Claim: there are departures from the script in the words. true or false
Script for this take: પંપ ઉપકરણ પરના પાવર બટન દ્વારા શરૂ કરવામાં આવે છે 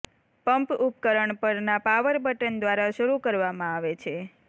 false